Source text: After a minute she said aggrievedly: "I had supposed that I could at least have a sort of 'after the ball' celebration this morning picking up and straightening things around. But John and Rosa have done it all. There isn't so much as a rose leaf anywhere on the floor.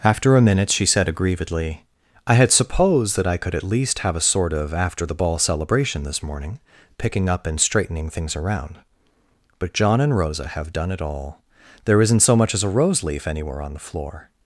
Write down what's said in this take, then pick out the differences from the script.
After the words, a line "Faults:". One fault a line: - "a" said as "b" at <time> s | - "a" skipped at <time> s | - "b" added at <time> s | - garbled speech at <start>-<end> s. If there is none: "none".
After a minute she said aggrievedly: "I had supposed that I could at least have a sort of 'after the ball' celebration this morning picking up and straightening things around. But John and Rosa have done it all. There isn't so much as a rose leaf anywhere on the floor.
Faults:
none